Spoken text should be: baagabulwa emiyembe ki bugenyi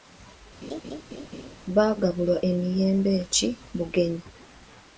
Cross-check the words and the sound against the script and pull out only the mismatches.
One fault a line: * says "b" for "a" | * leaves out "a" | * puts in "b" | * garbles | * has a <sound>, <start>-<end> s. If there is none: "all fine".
* has a laugh, 0.6-1.6 s